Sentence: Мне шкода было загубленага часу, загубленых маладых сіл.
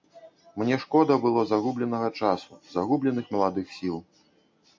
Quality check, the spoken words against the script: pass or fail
pass